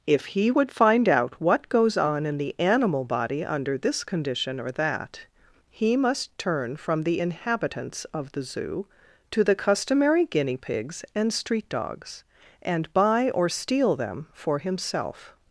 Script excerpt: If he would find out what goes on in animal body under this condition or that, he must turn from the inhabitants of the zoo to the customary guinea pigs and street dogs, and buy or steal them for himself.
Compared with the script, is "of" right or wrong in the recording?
right